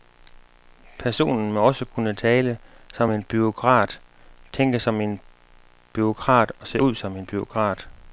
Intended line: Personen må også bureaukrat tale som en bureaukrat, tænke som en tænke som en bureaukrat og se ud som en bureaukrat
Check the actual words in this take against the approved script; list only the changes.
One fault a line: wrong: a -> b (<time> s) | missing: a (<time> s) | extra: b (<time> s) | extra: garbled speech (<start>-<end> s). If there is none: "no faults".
wrong: bureaukrat -> kunne (1.9 s)
missing: tænke som en (5.2 s)